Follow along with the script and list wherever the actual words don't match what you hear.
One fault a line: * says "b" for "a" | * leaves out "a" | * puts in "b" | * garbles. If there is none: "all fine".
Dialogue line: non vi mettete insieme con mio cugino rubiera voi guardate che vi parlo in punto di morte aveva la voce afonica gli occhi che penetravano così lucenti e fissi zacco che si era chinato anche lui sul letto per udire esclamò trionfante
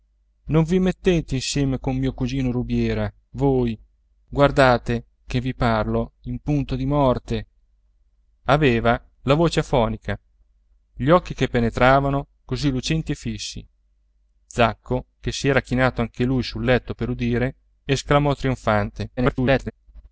* garbles